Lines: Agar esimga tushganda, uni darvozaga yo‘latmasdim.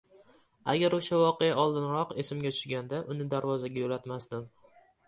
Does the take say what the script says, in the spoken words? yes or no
no